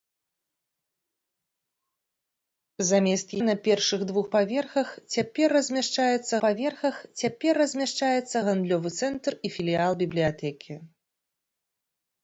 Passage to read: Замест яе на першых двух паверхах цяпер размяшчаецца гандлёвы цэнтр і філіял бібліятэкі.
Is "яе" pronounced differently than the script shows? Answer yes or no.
yes